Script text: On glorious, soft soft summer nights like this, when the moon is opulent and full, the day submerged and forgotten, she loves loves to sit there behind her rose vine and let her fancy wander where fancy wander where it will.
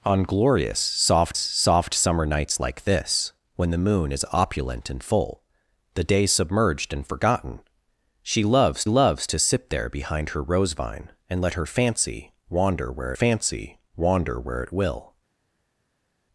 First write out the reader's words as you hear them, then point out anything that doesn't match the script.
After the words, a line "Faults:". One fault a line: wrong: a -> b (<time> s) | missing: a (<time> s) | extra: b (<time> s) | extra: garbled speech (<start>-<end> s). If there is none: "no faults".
On glorious, soft soft summer nights like this, when the moon is opulent and full, the day submerged and forgotten, she loves loves to sit there behind her rose vine and let her fancy wander where fancy wander where it will.
Faults:
no faults